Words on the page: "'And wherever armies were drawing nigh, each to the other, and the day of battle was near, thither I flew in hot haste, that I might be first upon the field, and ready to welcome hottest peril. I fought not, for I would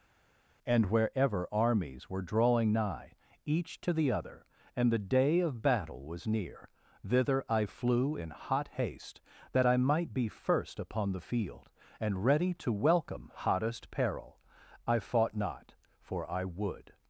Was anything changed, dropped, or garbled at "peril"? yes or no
no